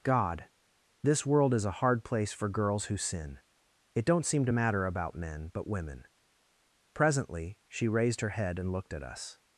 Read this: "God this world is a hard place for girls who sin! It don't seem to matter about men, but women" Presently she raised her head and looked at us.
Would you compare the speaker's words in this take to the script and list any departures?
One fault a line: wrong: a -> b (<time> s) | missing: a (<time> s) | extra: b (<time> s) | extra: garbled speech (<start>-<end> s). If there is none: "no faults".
no faults